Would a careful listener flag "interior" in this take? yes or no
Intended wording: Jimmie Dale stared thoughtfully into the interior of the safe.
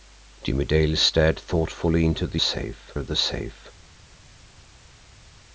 yes